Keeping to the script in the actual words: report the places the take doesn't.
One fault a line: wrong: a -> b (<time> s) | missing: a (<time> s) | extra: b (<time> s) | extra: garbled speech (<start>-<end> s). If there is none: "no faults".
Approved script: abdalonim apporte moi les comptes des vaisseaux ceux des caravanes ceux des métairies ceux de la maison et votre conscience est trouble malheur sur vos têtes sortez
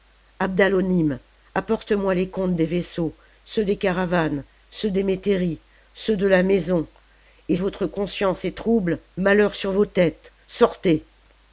no faults